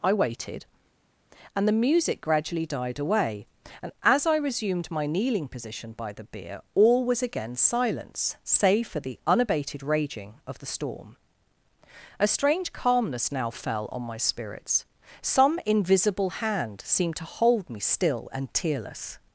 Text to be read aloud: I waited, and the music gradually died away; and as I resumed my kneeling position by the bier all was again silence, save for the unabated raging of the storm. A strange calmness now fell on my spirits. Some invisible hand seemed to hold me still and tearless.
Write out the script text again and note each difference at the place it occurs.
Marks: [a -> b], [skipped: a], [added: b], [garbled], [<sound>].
I waited, and the music gradually died away; and as I resumed my kneeling position by the bier all was again silence, save for the unabated raging of the storm. A strange calmness now fell on my spirits. Some invisible hand seemed to hold me still and tearless.